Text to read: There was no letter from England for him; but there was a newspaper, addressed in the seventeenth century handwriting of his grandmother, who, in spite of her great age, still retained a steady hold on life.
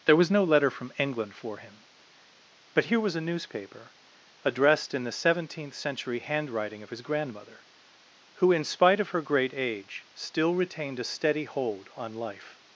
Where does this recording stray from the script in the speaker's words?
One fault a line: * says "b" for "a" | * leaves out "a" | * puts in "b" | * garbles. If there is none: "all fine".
* says "here" for "there"